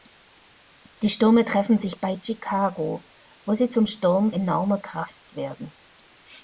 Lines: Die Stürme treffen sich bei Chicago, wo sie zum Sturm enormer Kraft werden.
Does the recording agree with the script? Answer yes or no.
yes